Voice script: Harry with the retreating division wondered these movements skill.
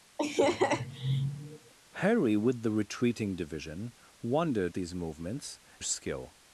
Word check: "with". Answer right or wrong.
right